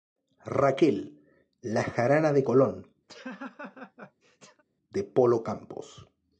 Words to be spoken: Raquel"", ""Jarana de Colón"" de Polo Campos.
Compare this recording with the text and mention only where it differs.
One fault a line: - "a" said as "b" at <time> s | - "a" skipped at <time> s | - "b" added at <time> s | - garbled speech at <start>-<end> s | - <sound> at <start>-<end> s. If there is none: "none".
- "La" added at 1.6 s
- laugh at 3.1-4.6 s